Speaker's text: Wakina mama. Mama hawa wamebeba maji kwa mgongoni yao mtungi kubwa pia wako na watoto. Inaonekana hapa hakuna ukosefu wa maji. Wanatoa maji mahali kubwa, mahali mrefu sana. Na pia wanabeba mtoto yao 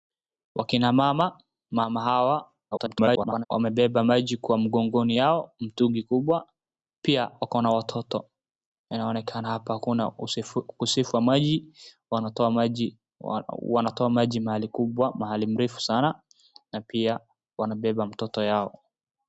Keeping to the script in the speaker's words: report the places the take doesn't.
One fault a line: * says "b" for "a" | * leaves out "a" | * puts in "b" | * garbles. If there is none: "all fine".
* garbles